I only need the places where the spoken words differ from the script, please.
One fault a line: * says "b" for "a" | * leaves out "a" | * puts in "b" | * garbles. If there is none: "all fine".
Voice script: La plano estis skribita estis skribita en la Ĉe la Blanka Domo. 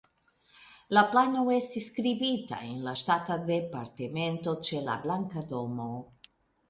* says "en la Ŝtata Departemento" for "estis skribita en la"